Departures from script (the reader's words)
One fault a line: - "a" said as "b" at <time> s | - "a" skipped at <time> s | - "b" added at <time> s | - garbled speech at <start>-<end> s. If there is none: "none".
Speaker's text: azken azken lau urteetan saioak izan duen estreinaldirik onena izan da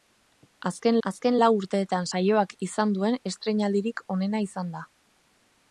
none